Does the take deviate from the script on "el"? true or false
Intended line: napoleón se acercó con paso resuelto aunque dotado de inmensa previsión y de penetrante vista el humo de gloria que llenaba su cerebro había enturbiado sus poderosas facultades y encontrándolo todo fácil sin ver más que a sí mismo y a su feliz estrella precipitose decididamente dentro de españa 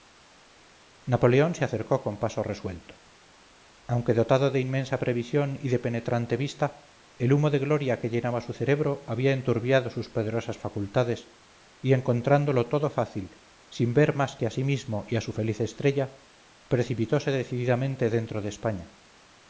false